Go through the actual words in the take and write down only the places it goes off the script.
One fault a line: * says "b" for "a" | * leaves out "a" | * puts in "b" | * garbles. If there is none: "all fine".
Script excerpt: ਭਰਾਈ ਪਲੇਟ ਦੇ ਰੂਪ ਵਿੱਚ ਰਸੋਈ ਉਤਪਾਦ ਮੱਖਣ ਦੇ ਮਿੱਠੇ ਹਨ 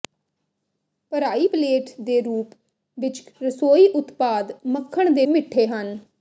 all fine